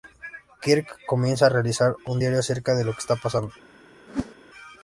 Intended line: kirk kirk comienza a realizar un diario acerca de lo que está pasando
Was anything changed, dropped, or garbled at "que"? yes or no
no